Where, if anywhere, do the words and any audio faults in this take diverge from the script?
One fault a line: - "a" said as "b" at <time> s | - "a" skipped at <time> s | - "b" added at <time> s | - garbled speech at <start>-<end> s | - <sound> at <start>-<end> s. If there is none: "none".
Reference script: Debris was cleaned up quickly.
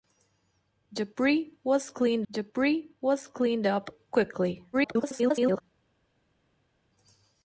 - "debris was cleaned" added at 2.3 s
- garbled speech at 4.7-5.6 s